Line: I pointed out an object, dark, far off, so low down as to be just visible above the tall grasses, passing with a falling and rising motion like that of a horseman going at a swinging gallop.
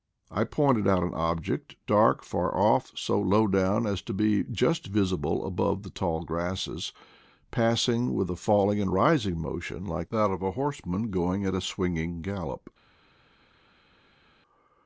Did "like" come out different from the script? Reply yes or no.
no